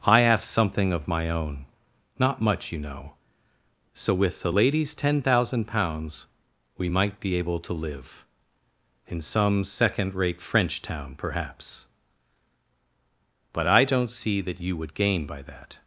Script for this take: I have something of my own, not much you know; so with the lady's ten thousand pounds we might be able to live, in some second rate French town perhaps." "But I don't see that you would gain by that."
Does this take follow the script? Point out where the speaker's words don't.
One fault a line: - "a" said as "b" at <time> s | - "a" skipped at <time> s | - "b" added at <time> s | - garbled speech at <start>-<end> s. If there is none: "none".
none